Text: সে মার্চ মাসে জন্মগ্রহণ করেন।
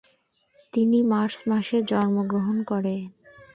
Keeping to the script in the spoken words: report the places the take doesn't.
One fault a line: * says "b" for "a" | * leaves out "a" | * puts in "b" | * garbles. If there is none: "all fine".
* says "তিনি" for "সে"